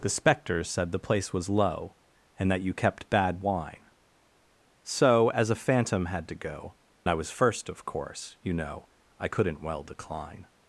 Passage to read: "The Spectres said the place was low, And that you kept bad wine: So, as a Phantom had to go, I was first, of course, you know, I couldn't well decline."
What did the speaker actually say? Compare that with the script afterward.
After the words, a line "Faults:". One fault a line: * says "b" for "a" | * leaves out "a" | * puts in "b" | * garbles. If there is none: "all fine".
"The Spectres said the place was low, And that you kept bad wine: So, as a Phantom had to go, I was first, of course, you know, I couldn't well decline."
Faults:
all fine